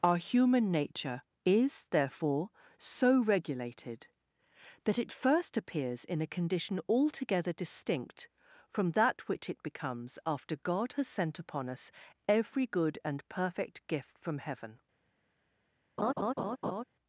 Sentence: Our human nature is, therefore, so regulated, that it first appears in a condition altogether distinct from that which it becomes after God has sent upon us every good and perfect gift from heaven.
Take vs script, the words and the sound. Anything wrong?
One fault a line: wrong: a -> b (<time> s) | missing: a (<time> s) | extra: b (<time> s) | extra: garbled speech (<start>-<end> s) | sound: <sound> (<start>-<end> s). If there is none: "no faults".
sound: laugh (16.0-16.8 s)